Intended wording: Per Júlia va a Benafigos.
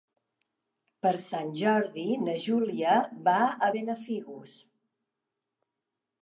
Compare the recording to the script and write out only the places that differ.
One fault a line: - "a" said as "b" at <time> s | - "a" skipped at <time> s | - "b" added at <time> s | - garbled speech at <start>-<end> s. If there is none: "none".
- "Sant Jordi na" added at 1.2 s